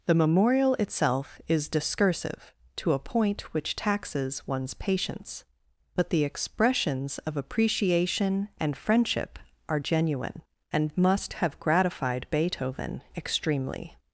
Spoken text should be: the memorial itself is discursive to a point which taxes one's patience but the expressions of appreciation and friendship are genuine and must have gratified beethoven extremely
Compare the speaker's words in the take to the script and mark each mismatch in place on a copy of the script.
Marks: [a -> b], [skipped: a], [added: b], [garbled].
the memorial itself is discursive to a point which taxes one's patience but the expressions of appreciation and friendship are genuine and must have gratified beethoven extremely